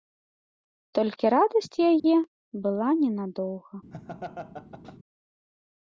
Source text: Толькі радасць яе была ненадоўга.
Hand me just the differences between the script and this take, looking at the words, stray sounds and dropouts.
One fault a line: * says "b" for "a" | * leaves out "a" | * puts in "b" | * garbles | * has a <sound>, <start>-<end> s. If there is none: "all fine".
* has a dropout, 2.0-2.0 s
* has a laugh, 3.9-5.0 s